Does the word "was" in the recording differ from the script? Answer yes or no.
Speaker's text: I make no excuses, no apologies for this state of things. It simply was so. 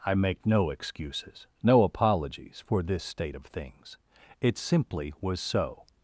no